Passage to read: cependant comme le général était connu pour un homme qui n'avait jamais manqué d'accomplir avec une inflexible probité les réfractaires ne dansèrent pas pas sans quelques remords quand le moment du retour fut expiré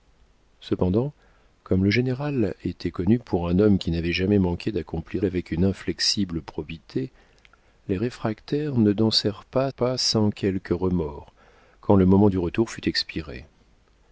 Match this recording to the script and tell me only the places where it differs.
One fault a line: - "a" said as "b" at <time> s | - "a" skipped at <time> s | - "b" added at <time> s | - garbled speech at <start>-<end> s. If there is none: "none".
none